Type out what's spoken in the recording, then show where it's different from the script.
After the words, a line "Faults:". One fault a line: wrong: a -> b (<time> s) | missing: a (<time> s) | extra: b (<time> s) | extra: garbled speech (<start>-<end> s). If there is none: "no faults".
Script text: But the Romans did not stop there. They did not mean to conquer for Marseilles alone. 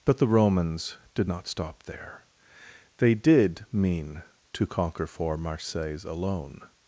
But the Romans did not stop there. They did mean to conquer for Marseilles alone.
Faults:
missing: not (3.6 s)